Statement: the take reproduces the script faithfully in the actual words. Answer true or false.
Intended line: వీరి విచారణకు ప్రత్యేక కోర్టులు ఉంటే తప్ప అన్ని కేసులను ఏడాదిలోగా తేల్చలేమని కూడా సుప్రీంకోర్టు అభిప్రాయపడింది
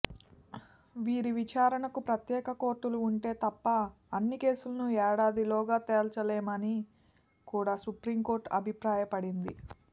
true